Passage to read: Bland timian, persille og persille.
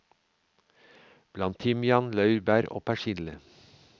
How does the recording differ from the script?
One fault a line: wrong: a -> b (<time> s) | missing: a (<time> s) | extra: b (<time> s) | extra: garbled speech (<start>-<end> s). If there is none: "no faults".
wrong: persille -> laurbær (2.2 s)